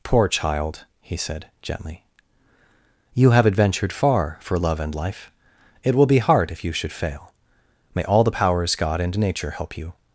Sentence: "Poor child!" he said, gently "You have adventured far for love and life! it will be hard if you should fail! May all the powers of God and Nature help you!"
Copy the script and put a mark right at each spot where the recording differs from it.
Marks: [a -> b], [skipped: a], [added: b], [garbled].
"Poor child!" he said, gently "You have adventured far for love and life! it will be hard if you should fail! May all the powers [skipped: of] God and Nature help you!"